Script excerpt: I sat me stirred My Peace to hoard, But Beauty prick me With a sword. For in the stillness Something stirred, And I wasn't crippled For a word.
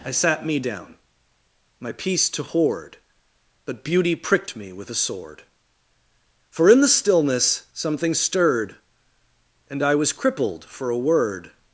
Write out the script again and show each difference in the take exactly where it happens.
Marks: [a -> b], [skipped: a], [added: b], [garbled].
I sat me [stirred -> down] My Peace to hoard, But Beauty [prick -> pricked] me With a sword. For in the stillness Something stirred, And I [wasn't -> was] crippled For a word.